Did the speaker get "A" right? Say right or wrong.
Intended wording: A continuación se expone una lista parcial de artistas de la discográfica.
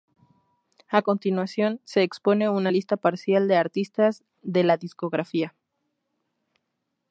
right